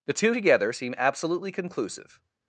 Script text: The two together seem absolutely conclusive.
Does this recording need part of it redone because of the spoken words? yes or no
no